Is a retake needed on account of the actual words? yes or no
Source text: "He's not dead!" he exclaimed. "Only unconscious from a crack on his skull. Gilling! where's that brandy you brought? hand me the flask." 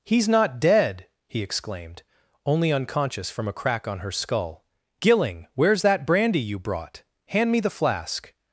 yes